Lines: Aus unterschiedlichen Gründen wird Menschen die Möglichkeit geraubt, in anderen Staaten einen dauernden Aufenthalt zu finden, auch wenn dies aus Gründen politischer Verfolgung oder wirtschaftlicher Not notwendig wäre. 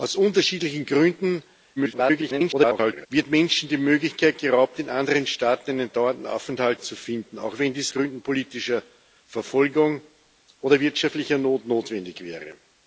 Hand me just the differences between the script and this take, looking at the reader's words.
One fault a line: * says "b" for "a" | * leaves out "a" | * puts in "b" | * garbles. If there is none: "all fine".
* garbles
* leaves out "aus"